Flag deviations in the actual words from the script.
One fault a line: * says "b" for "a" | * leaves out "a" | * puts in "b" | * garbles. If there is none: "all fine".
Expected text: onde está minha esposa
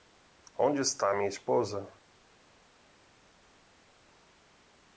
all fine